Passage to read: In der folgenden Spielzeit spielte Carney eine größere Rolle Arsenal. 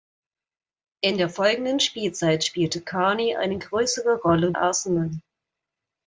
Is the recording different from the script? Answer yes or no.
no